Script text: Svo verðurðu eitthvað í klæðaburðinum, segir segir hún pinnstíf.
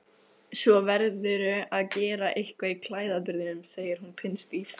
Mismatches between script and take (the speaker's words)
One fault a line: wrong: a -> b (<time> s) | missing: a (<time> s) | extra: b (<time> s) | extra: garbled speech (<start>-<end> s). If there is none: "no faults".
extra: að gera (1.8 s)
missing: segir (4.0 s)